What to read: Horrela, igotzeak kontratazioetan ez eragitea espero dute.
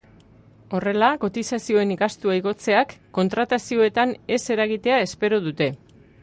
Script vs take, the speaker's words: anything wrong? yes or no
yes